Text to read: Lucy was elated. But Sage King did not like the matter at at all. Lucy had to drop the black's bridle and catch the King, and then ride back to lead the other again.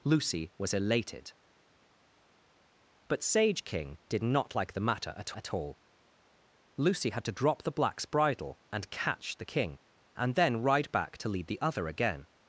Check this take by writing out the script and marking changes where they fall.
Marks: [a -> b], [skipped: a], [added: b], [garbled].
Lucy was elated. But Sage King did not like the matter at at all. Lucy had to drop the black's bridle and catch the King, and then ride back to lead the other again.